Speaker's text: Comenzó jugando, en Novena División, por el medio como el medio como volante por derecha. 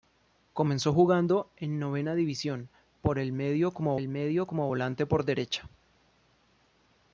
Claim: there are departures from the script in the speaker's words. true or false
false